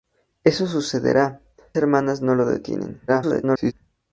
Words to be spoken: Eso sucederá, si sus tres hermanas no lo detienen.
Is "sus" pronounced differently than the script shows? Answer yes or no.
yes